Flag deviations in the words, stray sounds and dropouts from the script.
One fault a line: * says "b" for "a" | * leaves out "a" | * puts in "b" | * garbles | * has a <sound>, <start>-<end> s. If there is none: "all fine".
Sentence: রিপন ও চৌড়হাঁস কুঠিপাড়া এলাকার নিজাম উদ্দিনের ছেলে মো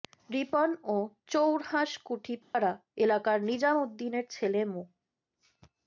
* has a dropout, 2.4-2.5 s